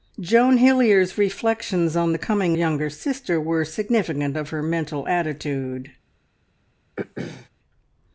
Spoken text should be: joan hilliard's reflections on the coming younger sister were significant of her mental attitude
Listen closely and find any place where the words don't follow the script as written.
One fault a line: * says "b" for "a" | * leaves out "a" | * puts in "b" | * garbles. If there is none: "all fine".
all fine